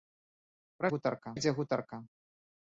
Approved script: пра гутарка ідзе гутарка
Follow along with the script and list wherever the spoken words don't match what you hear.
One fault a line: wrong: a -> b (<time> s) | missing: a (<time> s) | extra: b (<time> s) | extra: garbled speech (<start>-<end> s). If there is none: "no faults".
no faults